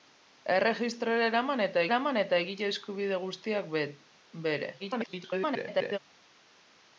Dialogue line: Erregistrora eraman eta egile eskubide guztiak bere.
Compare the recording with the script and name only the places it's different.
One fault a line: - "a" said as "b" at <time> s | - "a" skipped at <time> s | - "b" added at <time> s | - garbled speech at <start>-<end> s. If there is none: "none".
- "eraman eta" added at 1.9 s
- garbled speech at 4.8-6.0 s